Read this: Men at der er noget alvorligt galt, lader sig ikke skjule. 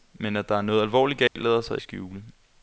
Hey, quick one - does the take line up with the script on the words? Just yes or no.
no